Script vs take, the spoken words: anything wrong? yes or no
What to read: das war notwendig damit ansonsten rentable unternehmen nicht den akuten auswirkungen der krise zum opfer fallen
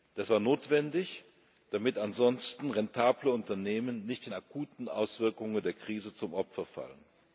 no